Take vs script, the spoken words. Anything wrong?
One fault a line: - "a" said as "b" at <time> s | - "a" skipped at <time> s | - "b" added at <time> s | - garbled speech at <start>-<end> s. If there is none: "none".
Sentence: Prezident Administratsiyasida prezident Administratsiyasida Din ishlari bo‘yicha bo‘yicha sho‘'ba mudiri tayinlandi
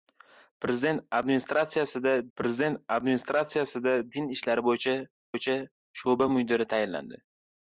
none